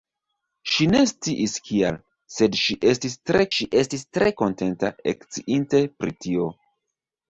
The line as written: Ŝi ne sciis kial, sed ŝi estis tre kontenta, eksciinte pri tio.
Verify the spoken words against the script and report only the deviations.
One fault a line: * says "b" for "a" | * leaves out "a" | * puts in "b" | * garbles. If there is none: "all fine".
* puts in "ŝi estis tre"